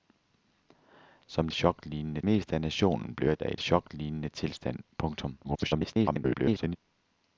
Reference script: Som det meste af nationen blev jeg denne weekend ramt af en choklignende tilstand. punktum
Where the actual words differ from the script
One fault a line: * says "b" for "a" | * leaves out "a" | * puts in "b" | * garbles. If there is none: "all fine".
* says "choklignende" for "det"
* leaves out "denne weekend ramt"
* garbles